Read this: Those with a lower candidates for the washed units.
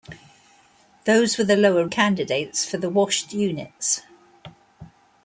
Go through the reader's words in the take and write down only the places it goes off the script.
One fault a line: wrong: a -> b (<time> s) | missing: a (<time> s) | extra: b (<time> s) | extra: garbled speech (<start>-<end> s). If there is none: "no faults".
no faults